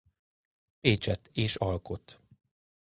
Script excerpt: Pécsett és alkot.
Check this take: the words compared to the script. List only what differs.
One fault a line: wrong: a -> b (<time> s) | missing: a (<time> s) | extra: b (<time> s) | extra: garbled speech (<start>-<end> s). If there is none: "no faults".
no faults